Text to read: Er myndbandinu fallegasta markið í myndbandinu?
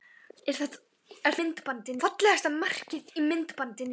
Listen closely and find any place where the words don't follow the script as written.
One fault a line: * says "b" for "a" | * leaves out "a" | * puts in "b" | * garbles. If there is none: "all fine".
all fine